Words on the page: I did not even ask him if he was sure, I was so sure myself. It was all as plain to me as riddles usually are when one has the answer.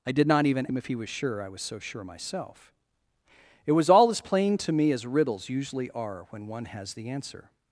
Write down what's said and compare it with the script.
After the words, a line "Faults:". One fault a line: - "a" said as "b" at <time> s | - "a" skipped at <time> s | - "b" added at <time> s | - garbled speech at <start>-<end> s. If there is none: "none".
I did not even him if he was sure, I was so sure myself. It was all as plain to me as riddles usually are when one has the answer.
Faults:
- "ask" skipped at 0.7 s